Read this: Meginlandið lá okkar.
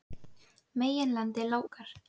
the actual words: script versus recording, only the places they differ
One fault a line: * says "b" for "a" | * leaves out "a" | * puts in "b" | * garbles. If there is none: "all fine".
all fine